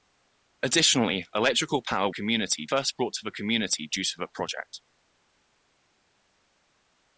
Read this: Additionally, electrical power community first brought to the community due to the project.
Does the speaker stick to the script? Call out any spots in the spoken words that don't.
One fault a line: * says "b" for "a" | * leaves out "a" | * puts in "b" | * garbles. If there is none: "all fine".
all fine